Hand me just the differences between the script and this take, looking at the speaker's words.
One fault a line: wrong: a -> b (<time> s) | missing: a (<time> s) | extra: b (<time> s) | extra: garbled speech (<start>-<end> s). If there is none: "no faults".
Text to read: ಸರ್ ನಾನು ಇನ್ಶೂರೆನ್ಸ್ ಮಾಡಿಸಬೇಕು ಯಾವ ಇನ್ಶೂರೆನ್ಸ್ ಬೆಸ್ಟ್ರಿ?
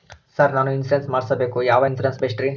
no faults